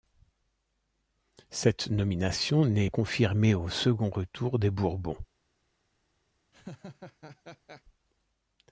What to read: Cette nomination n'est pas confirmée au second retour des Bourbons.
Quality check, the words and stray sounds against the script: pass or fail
fail